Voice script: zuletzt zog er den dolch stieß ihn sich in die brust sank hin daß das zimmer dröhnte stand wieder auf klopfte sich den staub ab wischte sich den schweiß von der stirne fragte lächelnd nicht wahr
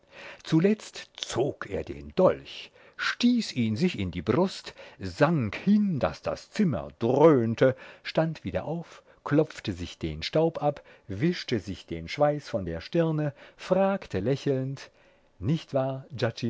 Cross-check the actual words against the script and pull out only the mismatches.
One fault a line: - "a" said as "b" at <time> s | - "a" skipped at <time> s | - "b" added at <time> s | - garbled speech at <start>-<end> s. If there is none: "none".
none